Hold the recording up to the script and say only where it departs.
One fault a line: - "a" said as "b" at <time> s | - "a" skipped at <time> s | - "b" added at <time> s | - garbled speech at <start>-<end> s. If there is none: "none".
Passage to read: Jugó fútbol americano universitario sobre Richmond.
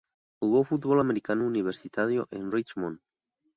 - "sobre" said as "en" at 2.3 s